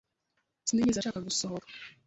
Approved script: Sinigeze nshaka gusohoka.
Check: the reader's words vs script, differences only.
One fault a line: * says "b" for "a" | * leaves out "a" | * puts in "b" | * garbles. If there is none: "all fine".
all fine